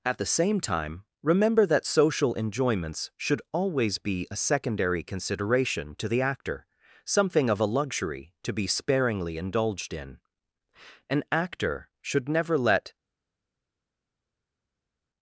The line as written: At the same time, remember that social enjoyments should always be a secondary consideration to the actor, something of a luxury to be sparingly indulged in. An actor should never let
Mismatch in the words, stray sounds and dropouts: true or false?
false